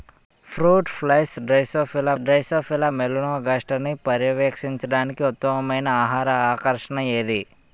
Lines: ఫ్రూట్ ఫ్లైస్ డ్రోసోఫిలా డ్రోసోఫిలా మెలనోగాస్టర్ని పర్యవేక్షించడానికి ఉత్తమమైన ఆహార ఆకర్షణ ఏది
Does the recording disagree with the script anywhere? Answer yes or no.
no